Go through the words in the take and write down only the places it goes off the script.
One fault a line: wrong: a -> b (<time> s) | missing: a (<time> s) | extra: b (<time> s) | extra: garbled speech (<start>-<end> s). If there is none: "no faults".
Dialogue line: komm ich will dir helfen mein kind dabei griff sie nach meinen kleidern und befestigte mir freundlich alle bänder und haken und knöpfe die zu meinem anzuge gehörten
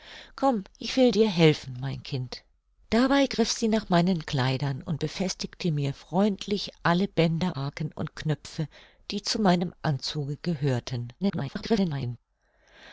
missing: und (7.6 s)
extra: garbled speech (11.2-12.2 s)